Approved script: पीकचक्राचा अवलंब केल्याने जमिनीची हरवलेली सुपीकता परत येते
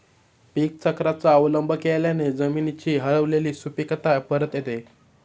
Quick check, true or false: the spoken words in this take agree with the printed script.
true